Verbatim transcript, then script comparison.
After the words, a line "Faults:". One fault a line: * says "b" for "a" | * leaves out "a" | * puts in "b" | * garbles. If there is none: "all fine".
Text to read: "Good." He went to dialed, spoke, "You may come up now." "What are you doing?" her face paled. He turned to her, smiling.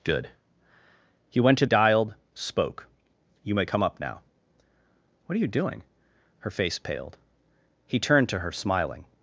"Good." He went to dialed, spoke, "You may come up now." "What are you doing?" her face paled. He turned to her, smiling.
Faults:
all fine